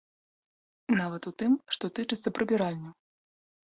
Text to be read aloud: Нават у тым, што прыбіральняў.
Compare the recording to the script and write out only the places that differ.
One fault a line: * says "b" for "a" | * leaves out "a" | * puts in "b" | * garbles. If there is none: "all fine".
* puts in "тычыцца"